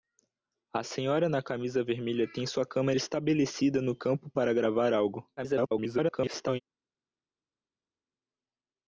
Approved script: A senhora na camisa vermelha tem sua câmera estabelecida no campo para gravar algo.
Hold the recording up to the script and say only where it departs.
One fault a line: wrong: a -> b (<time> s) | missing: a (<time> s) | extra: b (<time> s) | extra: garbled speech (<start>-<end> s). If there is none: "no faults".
extra: garbled speech (5.4-6.6 s)